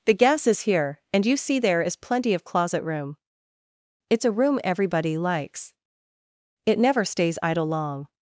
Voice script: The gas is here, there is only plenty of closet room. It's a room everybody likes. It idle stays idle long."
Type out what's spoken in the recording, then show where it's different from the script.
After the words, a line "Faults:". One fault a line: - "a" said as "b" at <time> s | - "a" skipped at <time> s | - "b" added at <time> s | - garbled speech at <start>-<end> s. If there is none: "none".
The gas is here, and you see there is plenty of closet room. It's a room everybody likes. It never stays idle long."
Faults:
- "and you see" added at 1.1 s
- "only" skipped at 1.9 s
- "idle" said as "never" at 6.8 s